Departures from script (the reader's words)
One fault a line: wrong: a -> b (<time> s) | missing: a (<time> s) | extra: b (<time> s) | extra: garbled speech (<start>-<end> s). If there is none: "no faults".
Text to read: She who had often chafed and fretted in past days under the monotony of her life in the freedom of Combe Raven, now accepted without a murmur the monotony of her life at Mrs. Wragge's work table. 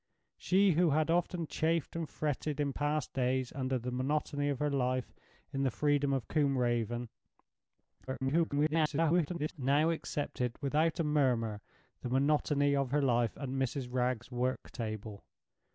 extra: garbled speech (8.1-9.5 s)